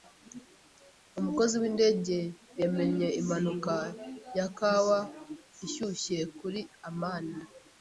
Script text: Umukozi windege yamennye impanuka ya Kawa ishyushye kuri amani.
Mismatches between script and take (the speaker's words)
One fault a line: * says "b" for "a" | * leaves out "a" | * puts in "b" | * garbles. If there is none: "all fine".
all fine